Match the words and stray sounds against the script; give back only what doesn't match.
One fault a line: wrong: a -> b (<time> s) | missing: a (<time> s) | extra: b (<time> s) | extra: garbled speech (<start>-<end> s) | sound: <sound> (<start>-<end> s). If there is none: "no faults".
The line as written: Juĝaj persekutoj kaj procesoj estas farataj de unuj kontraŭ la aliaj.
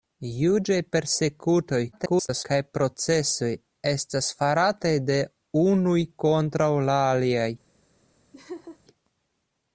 extra: garbled speech (1.9-2.4 s)
sound: laugh (8.3-8.8 s)